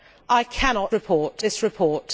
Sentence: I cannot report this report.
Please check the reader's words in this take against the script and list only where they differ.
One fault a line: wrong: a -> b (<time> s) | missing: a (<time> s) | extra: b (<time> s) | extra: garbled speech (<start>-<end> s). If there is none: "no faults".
no faults